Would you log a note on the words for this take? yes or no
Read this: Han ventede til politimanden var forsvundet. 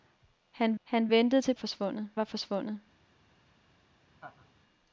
yes